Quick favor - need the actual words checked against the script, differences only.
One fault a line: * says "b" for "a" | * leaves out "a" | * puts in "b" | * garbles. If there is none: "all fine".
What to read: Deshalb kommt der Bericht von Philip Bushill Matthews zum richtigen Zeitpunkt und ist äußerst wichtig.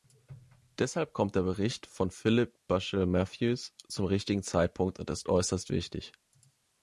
all fine